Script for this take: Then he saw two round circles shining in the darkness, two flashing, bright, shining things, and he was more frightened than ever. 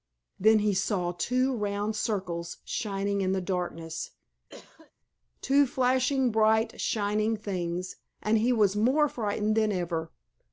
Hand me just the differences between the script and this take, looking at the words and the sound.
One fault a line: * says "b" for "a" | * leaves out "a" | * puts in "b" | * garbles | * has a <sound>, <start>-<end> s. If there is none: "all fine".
* has a cough, 4.5-4.9 s